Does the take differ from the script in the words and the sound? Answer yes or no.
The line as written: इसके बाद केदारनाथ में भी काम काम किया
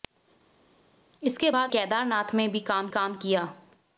no